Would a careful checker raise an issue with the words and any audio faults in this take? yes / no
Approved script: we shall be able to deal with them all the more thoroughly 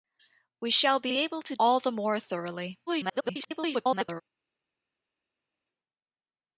yes